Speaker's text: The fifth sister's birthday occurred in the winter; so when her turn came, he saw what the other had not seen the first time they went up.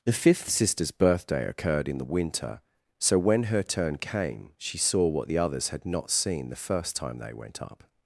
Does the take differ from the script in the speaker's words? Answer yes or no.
yes